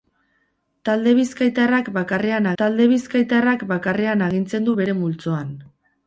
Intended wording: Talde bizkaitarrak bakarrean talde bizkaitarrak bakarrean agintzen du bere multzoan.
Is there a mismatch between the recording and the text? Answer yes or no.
no